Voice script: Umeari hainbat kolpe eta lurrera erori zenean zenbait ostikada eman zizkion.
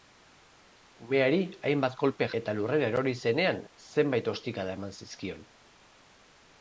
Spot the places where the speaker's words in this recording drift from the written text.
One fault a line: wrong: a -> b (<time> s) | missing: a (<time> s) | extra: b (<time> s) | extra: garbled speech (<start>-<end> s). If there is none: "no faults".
no faults